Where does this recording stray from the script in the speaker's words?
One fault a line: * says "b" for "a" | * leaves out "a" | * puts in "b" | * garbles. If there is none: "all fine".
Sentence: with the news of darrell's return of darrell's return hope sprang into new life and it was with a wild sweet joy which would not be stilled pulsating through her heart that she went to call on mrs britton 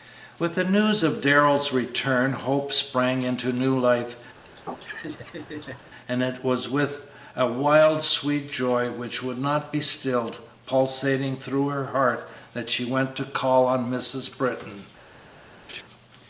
* leaves out "of darrell's return"